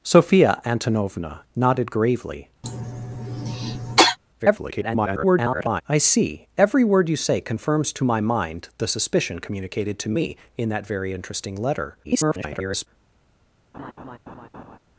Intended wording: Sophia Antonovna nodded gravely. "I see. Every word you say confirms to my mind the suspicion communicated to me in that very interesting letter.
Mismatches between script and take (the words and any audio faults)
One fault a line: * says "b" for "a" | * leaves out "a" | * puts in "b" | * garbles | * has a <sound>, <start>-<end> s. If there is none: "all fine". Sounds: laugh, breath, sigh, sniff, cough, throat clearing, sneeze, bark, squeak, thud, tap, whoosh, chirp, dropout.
* has a cough, 2.6-4.2 s
* garbles
* garbles
* has a laugh, 13.7-14.8 s